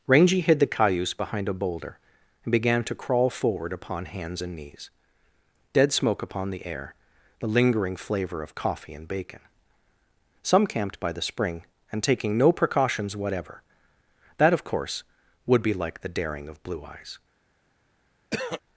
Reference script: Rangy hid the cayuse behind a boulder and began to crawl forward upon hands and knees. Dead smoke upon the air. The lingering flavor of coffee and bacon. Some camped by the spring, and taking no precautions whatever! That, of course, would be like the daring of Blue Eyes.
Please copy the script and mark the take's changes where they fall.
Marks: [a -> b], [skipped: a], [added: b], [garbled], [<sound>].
Rangy hid the cayuse behind a boulder and began to crawl forward upon hands and knees. Dead smoke upon the air. The lingering flavor of coffee and bacon. Some camped by the spring, and taking no precautions whatever! That, of course, would be like the daring of Blue Eyes. [throat clearing]